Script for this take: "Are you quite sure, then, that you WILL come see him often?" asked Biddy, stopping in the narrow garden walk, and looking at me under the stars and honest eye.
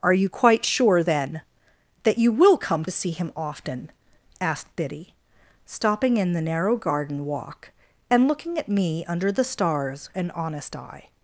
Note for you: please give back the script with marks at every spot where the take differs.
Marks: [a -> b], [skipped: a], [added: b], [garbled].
"Are you quite sure, then, that you WILL come see him often?" asked Biddy, stopping in the narrow garden walk, and looking at me under the stars and honest eye.